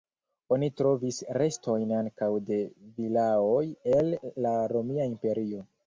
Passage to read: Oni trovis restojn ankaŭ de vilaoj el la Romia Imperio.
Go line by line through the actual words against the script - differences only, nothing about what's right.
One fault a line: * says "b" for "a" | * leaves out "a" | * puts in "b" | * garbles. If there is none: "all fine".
all fine